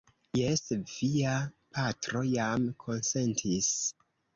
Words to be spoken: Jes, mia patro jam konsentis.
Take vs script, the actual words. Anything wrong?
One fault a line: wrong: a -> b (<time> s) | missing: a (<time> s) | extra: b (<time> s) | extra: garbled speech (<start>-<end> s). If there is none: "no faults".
wrong: mia -> via (0.9 s)